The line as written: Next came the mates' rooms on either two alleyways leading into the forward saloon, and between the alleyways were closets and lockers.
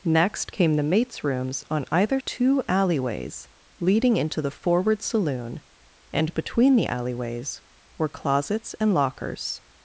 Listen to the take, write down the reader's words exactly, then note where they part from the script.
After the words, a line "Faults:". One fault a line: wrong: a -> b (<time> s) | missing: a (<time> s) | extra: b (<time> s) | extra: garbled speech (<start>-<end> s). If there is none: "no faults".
Next came the mates' rooms on either two alleyways leading into the forward saloon, and between the alleyways were closets and lockers.
Faults:
no faults